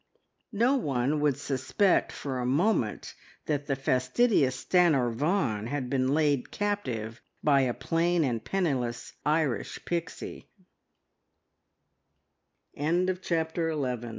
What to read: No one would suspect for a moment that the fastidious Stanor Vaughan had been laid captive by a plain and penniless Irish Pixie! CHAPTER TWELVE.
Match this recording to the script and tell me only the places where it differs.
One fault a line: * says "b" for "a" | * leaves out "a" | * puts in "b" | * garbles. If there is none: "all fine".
all fine